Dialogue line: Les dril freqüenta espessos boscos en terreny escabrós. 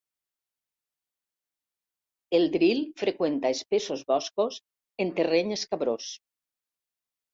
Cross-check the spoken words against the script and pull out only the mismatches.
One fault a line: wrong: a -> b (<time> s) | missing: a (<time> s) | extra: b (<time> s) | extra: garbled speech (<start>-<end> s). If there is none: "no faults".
wrong: Les -> El (2.4 s)